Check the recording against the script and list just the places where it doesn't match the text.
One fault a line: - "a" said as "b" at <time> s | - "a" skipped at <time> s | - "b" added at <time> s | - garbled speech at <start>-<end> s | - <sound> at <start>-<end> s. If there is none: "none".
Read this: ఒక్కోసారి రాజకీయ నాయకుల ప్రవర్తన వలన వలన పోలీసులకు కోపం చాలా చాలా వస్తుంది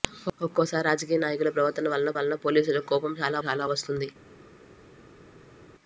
none